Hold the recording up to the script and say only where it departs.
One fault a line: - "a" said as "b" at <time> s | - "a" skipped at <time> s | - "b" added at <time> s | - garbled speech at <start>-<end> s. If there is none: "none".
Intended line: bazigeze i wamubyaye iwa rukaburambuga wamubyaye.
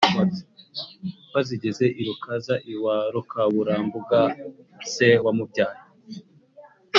- "wamubyaye" said as "rukaza" at 2.1 s
- "se" added at 4.9 s